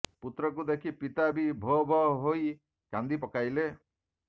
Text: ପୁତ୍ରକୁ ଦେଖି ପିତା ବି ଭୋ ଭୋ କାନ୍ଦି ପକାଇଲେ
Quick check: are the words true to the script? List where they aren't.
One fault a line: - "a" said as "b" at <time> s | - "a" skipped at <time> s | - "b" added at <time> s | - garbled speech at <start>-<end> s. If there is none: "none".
- "ହୋଇ" added at 2.2 s